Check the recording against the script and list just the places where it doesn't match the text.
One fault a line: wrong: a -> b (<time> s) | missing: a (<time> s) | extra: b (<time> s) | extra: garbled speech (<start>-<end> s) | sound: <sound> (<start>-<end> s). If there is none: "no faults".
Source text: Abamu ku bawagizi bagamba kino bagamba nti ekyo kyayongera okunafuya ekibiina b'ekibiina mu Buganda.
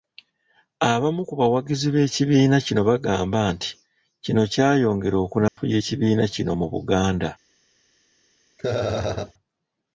wrong: bagamba -> b'ekibiina (1.9 s)
wrong: ekyo -> kino (4.2 s)
sound: dropout (5.5-5.6 s)
wrong: b'ekibiina -> kino (6.3 s)
sound: laugh (8.6-9.3 s)